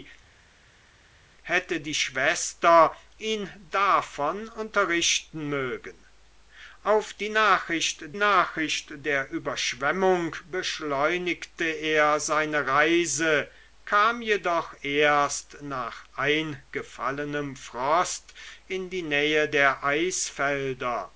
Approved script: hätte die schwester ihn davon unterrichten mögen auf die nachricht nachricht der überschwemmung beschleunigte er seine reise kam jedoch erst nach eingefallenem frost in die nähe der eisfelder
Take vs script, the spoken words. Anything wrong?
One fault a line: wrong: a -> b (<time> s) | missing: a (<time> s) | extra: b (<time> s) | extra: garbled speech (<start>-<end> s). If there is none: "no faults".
no faults